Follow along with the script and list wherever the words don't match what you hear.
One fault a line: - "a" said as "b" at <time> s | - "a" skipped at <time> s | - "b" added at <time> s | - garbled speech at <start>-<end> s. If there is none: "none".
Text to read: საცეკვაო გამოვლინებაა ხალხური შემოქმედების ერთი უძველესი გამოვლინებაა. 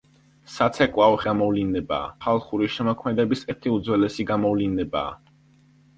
none